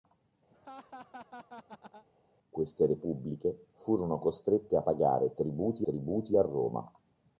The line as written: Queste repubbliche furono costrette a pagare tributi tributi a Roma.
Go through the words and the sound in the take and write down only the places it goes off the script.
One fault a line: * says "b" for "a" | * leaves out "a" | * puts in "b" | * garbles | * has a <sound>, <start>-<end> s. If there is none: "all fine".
* has a laugh, 0.5-2.1 s